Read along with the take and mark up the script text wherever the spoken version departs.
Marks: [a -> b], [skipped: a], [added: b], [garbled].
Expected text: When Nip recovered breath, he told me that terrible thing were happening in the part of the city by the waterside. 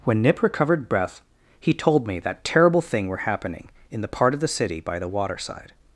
When Nip recovered breath, he told me that terrible thing were happening in the part of the city by the waterside.